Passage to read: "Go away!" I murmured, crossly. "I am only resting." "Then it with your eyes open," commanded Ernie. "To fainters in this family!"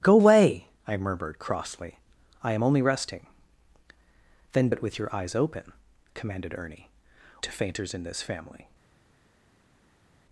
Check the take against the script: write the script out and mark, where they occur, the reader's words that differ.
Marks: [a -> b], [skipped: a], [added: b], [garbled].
"Go away!" I murmured, crossly. "I am only resting." "Then it with your eyes open," commanded Ernie. "To fainters in this family!"